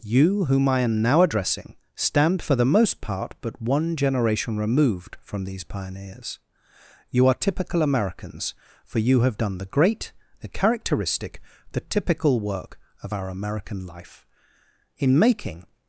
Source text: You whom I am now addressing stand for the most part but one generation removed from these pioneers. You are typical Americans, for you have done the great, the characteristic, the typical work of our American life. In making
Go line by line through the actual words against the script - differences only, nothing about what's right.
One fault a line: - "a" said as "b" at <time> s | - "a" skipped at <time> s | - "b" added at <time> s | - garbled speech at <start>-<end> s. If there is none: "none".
none